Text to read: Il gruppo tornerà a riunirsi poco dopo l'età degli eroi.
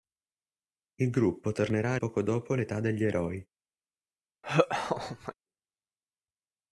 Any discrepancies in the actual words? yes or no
yes